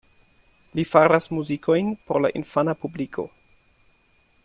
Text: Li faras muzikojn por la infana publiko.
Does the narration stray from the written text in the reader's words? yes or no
no